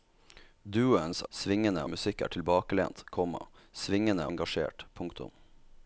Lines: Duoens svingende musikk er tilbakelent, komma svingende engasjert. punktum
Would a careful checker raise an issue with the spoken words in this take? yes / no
no